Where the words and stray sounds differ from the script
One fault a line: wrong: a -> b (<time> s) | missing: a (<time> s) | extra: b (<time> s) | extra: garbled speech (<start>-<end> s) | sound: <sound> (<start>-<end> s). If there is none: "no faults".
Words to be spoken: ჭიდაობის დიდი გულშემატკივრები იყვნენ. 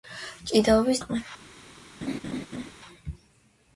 missing: დიდი გულშემატკივრები (1.0 s)
sound: laugh (2.0-2.7 s)